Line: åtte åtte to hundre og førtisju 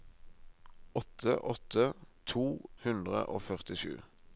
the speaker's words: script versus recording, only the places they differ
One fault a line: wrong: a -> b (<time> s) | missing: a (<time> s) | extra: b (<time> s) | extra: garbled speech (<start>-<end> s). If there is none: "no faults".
no faults